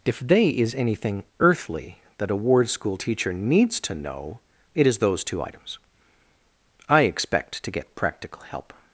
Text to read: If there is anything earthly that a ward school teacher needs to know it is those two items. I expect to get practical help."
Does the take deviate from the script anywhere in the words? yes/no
yes